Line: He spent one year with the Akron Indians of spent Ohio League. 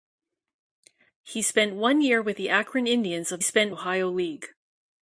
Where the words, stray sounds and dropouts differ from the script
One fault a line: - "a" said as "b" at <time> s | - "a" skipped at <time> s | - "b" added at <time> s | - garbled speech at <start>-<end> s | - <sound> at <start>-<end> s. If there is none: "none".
none